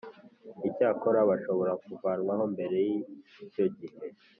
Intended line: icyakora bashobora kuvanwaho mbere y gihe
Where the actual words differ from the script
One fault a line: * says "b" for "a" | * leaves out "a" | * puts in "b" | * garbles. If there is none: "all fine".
* puts in "icyo"